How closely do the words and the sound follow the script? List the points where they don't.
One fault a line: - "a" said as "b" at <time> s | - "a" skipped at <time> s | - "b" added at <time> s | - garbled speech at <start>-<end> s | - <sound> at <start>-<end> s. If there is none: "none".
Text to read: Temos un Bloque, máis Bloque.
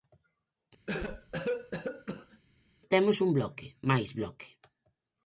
- cough at 0.9-2.4 s